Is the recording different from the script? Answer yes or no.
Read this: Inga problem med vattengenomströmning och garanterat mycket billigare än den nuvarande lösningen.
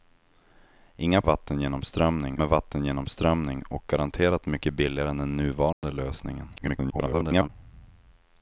yes